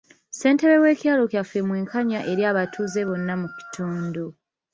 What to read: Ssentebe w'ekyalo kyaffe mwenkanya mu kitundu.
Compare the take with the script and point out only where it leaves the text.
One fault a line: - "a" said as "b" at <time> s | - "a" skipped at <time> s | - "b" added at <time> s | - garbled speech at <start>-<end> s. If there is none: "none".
- "eri abatuuze bonna" added at 2.3 s